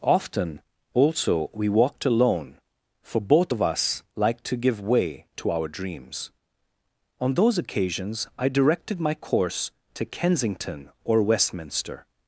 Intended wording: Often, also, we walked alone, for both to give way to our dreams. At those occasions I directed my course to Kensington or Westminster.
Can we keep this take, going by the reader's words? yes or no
no